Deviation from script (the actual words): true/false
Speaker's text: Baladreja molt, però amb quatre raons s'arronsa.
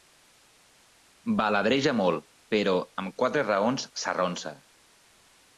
false